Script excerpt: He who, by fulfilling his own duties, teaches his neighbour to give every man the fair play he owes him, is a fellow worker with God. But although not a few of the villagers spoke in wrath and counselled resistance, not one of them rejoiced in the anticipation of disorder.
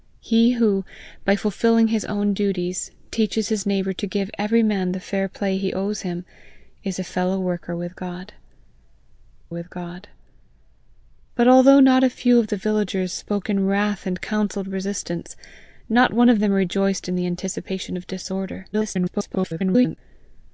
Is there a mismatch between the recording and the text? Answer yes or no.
yes